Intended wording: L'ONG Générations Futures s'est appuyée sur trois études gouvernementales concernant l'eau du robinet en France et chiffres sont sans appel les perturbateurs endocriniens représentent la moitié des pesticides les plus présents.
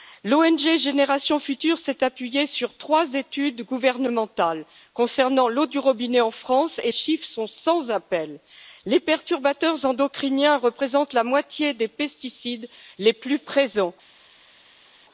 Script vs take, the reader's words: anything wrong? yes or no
no